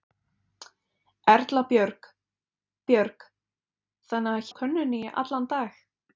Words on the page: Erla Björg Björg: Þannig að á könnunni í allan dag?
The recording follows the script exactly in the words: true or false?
true